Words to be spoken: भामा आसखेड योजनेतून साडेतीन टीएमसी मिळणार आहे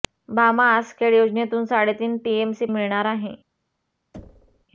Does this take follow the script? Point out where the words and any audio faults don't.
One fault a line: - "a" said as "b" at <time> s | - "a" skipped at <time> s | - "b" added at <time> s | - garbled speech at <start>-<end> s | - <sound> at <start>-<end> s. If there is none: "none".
- thud at 4.1-4.7 s